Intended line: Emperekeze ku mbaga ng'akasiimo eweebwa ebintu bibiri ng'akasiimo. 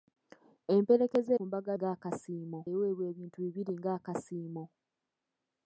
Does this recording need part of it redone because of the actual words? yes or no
no